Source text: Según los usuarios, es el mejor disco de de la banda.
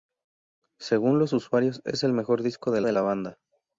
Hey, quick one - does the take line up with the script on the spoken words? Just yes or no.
yes